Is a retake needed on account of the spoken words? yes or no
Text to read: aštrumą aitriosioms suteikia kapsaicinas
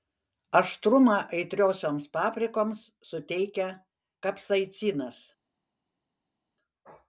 yes